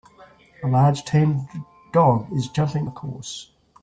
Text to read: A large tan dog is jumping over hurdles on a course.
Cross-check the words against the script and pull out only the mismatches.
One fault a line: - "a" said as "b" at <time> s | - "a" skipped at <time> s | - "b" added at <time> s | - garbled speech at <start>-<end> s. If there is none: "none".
- "over hurdles on" skipped at 2.9 s